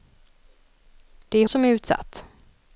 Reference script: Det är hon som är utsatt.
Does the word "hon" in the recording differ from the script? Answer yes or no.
yes